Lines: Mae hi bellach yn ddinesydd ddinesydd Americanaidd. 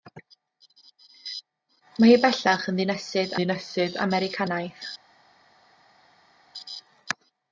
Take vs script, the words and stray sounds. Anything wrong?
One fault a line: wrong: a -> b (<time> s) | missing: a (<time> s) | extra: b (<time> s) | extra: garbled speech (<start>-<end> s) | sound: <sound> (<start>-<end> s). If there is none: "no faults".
no faults